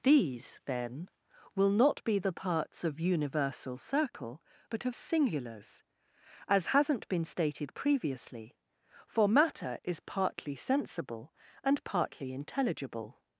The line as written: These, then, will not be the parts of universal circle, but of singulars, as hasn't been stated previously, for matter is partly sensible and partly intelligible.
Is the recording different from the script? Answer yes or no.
no